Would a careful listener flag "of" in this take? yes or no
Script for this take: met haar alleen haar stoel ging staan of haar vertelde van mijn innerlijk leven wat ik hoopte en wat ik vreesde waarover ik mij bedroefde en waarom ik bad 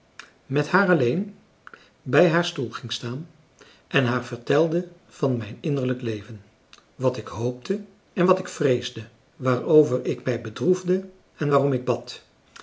yes